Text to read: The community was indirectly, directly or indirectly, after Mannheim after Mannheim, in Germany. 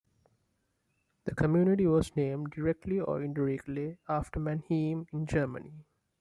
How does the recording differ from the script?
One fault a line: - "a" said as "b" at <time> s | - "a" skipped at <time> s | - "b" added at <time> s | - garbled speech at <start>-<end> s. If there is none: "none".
- "indirectly" said as "named" at 2.2 s
- "after Mannheim" skipped at 5.1 s